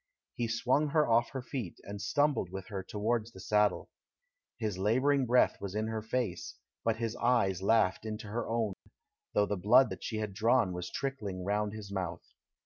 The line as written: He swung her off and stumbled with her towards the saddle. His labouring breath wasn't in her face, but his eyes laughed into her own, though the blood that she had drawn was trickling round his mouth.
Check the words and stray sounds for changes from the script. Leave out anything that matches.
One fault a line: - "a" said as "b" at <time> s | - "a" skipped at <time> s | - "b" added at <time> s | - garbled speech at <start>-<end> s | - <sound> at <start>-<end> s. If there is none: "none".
- "her feet" added at 1.3 s
- "wasn't" said as "was" at 5.6 s
- dropout at 8.7-8.9 s